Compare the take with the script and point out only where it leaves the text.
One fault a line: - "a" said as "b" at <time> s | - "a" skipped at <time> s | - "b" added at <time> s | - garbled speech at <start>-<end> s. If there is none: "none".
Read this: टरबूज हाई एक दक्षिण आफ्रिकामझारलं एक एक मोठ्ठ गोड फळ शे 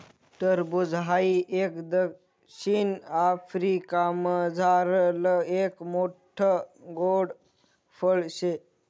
- "एक" skipped at 5.8 s